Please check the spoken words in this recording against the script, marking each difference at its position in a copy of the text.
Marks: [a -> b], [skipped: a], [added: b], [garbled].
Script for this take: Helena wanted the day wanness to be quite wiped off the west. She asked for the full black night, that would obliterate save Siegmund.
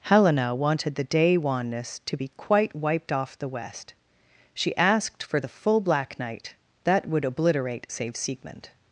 Helena wanted the day wanness to be quite wiped off the west. She asked for the full black night, that would obliterate save Siegmund.